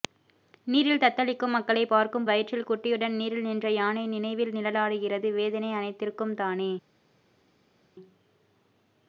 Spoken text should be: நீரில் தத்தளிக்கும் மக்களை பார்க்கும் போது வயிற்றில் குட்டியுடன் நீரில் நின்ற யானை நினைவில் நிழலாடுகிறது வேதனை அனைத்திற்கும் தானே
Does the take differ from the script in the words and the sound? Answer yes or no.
yes